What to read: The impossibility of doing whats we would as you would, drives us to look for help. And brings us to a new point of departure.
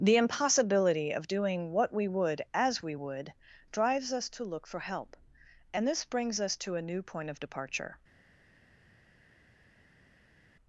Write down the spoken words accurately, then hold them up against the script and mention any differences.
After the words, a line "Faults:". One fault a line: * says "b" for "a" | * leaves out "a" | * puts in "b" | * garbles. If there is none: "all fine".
The impossibility of doing what we would as we would, drives us to look for help. And this brings us to a new point of departure.
Faults:
* says "what" for "whats"
* says "we" for "you"
* puts in "this"